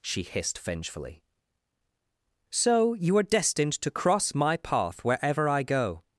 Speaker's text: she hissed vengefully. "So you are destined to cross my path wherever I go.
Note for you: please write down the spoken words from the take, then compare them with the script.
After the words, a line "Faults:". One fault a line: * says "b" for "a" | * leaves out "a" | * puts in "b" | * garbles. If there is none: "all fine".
she hissed vengefully. "So you are destined to cross my path wherever I go.
Faults:
all fine